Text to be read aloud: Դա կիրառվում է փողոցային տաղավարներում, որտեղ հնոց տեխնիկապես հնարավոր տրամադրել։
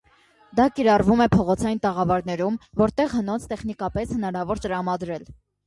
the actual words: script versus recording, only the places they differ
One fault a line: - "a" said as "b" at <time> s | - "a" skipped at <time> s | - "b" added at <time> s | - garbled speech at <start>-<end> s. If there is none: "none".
none